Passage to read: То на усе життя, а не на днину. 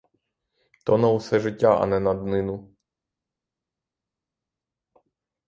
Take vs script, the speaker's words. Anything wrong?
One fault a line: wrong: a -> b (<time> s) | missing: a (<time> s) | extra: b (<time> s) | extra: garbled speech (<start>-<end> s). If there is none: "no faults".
no faults